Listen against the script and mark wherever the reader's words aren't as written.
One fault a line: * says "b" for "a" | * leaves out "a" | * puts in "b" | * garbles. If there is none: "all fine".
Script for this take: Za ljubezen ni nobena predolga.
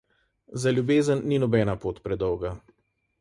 * puts in "pot"